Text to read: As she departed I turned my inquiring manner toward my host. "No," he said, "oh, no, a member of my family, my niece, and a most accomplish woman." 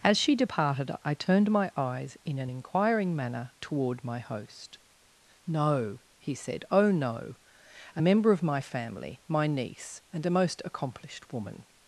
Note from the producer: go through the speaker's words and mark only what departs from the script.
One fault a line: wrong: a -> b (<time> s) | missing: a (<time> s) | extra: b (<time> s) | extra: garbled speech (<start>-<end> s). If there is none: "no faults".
extra: eyes in an (1.8 s)
wrong: accomplish -> accomplished (10.7 s)